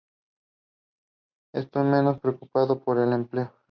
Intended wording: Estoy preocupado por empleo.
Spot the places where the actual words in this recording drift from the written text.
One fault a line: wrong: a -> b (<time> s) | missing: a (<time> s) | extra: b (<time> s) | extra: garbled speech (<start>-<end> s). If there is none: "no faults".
extra: menos (1.8 s)
extra: el (3.0 s)